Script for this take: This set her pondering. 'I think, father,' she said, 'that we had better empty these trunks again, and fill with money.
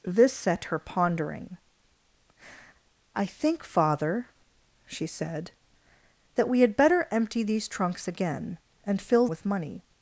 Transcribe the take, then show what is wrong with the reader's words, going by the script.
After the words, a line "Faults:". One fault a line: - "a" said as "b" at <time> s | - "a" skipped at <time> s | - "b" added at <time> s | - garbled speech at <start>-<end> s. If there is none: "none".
This set her pondering. 'I think, father,' she said, 'that we had better empty these trunks again, and fill with money.
Faults:
none